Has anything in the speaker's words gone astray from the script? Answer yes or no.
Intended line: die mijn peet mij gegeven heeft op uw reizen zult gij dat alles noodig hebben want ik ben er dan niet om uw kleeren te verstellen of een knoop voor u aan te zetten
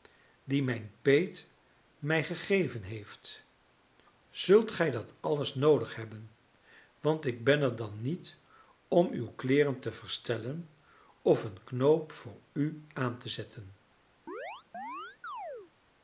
yes